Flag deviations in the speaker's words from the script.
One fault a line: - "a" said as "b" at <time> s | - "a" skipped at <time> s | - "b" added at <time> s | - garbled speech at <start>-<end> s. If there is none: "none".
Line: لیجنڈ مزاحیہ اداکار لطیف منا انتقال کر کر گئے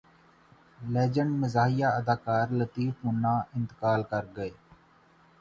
- "کر" skipped at 4.2 s